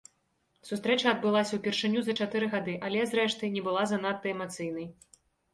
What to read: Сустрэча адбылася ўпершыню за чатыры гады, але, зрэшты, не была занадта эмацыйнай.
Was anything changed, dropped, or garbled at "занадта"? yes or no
no